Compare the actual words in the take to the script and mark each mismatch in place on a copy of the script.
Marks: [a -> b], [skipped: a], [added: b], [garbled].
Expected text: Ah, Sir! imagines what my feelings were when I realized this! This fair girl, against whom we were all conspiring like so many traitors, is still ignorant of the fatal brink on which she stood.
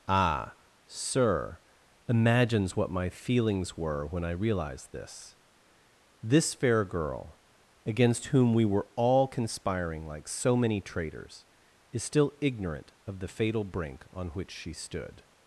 Ah, Sir! imagines what my feelings were when I realized this! This fair girl, against whom we were all conspiring like so many traitors, is still ignorant of the fatal brink on which she stood.